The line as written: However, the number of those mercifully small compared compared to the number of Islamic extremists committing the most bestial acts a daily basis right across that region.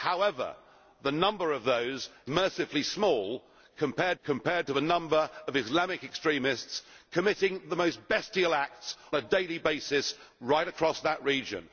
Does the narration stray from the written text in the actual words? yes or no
no